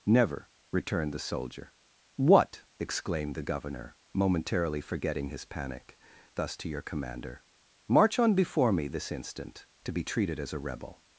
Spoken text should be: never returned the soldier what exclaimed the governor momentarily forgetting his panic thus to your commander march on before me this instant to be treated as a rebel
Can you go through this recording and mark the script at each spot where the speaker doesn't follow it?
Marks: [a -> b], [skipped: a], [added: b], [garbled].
never returned the soldier what exclaimed the governor momentarily forgetting his panic thus to your commander march on before me this instant to be treated as a rebel